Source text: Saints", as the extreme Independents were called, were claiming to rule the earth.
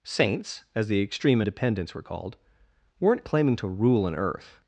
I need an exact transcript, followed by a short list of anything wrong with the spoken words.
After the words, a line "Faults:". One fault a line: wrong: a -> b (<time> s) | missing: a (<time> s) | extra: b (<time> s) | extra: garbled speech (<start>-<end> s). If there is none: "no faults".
Saints", as the extreme Independents were called, weren't claiming to rule an earth.
Faults:
wrong: were -> weren't (3.0 s)
wrong: the -> an (4.1 s)